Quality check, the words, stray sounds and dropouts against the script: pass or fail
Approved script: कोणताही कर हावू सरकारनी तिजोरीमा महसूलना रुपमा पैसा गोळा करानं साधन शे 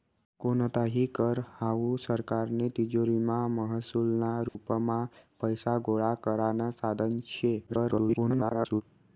fail